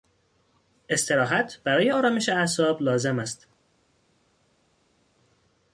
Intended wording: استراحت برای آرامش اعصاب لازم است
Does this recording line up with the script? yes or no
yes